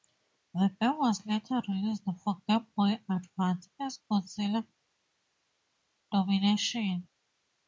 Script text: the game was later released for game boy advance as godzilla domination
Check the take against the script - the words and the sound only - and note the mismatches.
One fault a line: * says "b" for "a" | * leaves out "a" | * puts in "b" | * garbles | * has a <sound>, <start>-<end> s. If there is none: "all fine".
all fine